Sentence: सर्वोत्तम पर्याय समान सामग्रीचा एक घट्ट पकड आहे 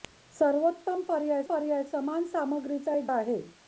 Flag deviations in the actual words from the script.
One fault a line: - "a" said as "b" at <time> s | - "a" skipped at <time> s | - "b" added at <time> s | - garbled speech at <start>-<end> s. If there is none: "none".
- "पर्याय" added at 1.4 s
- "घट्ट पकड" skipped at 3.1 s